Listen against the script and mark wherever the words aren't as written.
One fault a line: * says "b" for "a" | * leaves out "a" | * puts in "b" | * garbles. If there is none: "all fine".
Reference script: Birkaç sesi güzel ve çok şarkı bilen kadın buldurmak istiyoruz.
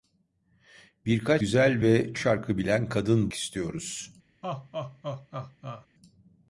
* leaves out "sesi"
* leaves out "çok"
* leaves out "buldurmak"